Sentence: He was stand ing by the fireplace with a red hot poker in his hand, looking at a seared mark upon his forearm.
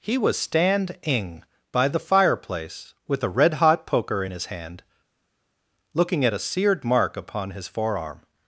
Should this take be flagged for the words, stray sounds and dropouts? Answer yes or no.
no